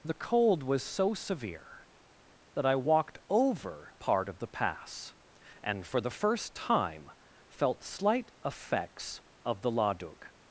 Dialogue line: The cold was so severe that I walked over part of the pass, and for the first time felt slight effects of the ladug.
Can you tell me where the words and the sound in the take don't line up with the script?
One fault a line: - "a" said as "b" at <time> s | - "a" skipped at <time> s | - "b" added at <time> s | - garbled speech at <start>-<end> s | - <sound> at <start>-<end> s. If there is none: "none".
none